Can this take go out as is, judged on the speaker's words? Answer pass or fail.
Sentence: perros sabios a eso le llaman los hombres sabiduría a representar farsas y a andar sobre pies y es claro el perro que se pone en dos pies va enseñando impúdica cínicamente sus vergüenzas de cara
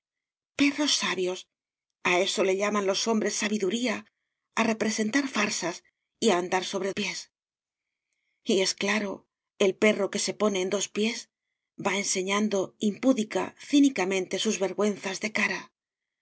pass